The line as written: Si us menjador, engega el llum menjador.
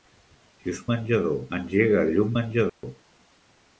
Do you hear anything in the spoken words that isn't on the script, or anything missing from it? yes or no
no